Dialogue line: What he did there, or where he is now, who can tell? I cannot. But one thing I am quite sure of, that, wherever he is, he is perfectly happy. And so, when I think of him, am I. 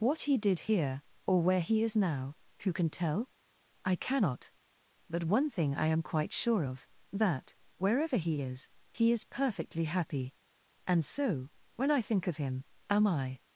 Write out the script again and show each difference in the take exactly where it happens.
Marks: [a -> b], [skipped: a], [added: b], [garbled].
What he did [there, -> here] or where he is now, who can tell? I cannot. But one thing I am quite sure of, that, wherever he is, he is perfectly happy. And so, when I think of him, am I.